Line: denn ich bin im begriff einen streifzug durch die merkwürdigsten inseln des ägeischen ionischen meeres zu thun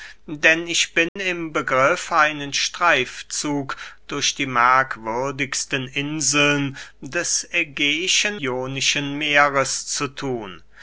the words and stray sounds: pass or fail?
fail